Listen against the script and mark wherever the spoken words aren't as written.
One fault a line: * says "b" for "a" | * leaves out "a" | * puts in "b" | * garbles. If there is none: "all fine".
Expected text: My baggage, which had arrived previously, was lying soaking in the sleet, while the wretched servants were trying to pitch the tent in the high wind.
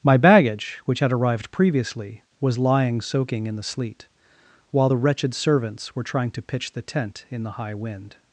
all fine